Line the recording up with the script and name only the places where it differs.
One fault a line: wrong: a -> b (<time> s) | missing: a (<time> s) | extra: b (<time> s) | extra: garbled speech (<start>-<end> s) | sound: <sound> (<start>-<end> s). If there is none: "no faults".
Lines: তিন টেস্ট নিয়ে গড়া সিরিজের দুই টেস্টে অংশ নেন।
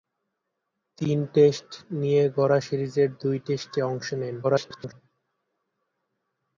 extra: garbled speech (4.4-4.9 s)